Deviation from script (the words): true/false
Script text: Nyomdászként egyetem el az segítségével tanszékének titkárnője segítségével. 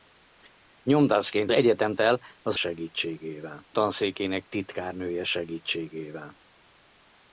false